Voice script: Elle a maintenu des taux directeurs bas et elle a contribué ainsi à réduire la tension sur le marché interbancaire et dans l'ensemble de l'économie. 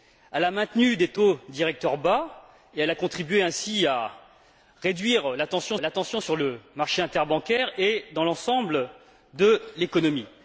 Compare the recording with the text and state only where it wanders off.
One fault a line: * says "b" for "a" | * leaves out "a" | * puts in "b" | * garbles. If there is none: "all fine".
* puts in "la tension"